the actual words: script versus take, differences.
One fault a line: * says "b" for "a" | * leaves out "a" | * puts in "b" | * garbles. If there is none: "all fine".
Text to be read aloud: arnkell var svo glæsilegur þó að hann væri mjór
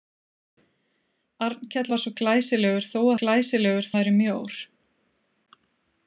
* says "glæsilegur" for "hann"